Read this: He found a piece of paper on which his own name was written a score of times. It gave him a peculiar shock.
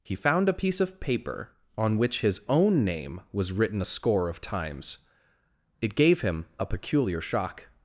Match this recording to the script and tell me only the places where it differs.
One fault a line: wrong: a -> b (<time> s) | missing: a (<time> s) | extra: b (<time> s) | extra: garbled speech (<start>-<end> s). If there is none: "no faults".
no faults